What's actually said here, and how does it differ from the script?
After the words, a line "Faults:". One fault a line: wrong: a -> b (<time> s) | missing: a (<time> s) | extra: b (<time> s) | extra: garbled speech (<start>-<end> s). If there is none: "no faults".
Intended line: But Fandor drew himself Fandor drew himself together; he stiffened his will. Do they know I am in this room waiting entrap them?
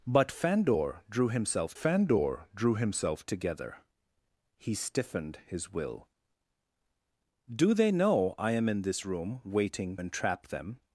But Fandor drew himself Fandor drew himself together; he stiffened his will. Do they know I am in this room waiting entrap them?
Faults:
no faults